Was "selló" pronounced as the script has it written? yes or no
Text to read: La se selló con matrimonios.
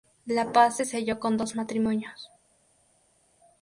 yes